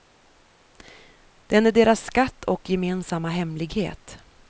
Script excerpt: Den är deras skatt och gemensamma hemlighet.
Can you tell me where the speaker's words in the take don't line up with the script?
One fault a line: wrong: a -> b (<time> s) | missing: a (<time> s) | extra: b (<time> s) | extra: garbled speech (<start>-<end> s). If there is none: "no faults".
no faults